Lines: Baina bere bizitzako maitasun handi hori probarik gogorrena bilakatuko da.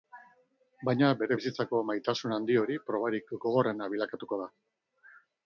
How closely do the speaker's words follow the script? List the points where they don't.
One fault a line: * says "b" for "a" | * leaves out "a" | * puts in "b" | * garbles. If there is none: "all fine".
all fine